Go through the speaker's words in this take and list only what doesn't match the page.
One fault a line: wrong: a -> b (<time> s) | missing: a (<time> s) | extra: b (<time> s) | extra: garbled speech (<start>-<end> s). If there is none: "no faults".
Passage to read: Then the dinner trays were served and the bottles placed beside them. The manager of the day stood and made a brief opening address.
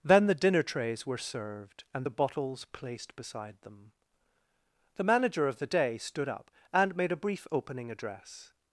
extra: up (6.3 s)